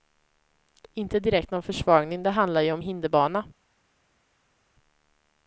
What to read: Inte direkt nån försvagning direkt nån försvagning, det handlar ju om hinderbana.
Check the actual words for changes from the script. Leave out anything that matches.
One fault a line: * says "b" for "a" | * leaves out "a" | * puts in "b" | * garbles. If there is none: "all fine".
* leaves out "direkt nån försvagning"